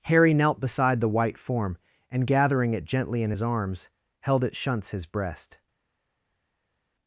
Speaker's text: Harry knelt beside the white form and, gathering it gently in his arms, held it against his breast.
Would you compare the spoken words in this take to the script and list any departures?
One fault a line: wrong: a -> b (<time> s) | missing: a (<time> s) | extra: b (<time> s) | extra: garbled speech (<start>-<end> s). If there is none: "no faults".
wrong: against -> shunts (4.5 s)